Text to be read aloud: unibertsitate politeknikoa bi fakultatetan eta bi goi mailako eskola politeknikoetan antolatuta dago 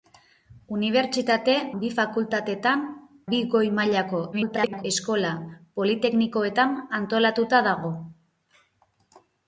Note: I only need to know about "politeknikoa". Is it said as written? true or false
false